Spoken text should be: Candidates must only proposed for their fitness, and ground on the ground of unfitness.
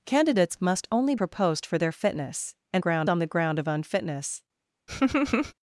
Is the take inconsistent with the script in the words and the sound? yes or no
yes